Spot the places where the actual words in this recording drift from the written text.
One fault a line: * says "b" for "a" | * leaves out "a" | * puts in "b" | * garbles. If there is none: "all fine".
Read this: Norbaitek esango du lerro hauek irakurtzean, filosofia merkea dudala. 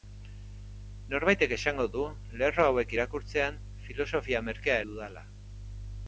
all fine